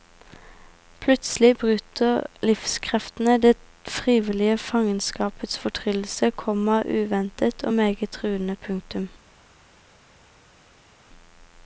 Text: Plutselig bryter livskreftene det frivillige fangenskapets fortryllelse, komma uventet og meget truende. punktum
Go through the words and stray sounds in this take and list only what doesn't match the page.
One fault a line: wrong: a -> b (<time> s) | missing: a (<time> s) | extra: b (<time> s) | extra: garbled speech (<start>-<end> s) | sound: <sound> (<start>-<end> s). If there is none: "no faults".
no faults